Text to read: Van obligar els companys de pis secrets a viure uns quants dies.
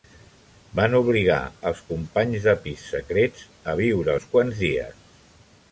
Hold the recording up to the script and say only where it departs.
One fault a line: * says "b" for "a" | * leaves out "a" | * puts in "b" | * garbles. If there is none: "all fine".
all fine